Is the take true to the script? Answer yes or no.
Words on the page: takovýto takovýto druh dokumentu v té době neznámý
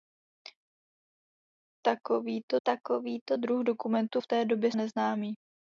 yes